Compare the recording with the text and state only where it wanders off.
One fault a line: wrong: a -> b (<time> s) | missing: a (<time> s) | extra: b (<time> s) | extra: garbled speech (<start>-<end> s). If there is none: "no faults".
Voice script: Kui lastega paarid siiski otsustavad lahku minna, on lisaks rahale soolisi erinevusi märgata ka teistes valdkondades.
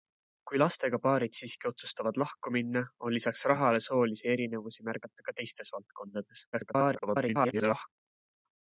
extra: garbled speech (6.5-7.9 s)